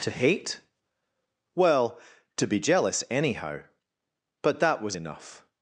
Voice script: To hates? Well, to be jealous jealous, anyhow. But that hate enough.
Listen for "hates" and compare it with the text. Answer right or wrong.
wrong